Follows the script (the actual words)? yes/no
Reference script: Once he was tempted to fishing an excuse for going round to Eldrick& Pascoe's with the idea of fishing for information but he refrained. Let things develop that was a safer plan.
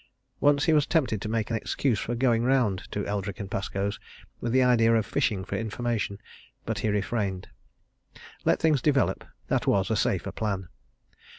no